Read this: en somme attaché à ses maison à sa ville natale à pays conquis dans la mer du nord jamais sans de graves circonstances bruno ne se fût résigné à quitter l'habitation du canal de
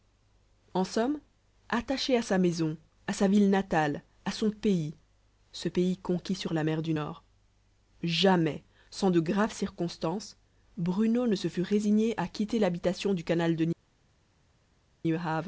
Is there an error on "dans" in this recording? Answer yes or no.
yes